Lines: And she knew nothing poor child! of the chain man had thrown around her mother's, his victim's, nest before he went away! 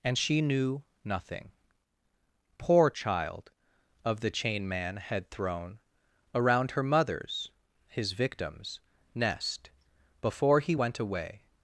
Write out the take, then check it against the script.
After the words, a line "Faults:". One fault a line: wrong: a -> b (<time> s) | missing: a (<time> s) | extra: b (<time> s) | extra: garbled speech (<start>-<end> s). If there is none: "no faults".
And she knew nothing poor child! of the chain man had thrown around her mother's, his victim's, nest before he went away!
Faults:
no faults